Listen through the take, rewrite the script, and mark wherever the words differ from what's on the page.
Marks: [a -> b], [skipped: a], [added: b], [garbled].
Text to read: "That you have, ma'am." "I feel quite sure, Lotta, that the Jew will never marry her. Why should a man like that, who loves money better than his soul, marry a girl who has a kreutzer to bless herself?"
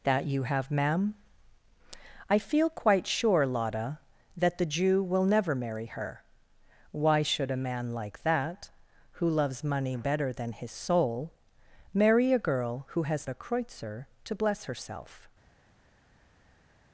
"That you have, ma'am." "I feel quite sure, Lotta, that the Jew will never marry her. Why should a man like that, who loves money better than his soul, marry a girl who has a kreutzer to bless herself?"